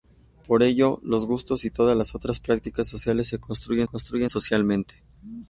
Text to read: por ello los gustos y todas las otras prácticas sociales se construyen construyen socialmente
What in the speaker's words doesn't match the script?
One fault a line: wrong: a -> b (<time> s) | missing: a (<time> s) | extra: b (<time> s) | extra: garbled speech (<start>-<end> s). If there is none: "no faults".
no faults